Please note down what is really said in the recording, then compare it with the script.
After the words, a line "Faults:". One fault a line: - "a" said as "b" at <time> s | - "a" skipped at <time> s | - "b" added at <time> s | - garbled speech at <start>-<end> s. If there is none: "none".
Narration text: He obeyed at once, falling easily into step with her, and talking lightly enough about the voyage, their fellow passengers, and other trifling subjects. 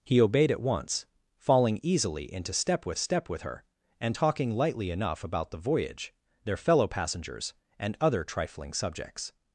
He obeyed at once, falling easily into step with step with her, and talking lightly enough about the voyage, their fellow passengers, and other trifling subjects.
Faults:
- "step with" added at 3.0 s